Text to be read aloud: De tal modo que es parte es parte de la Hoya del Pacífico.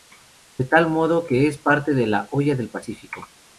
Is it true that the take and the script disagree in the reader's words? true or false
true